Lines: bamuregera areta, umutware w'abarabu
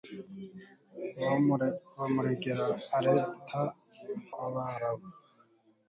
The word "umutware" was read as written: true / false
false